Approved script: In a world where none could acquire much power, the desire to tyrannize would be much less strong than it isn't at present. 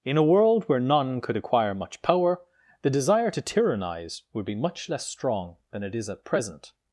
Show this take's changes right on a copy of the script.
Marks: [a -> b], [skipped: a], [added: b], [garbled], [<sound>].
In a world where none could acquire much power, the desire to tyrannize would be much less strong than it [isn't -> is] at present.